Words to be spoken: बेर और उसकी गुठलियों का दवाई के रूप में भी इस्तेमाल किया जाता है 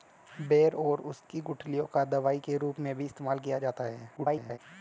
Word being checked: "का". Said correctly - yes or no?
yes